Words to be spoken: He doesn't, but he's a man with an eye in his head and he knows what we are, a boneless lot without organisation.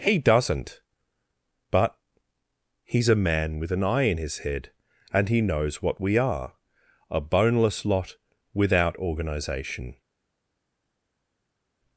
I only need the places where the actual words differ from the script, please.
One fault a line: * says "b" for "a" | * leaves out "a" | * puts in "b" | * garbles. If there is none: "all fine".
all fine